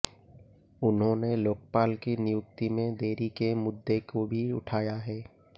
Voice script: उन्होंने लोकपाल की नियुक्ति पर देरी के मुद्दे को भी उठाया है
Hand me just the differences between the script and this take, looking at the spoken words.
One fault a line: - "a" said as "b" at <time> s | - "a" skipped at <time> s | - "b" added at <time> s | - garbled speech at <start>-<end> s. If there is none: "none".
- "पर" said as "में" at 2.7 s